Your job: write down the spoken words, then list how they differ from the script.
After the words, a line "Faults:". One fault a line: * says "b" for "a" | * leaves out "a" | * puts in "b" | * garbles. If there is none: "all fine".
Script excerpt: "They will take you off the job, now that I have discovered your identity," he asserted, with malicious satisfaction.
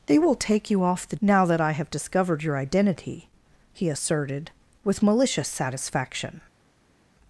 "They will take you off the now that I have discovered your identity," he asserted, with malicious satisfaction.
Faults:
* leaves out "job"